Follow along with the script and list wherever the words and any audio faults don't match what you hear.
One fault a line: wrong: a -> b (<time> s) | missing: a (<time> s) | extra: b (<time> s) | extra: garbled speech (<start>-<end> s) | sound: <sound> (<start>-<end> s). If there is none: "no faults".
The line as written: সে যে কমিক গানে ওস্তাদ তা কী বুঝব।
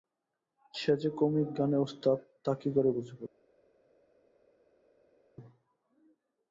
extra: করে (2.8 s)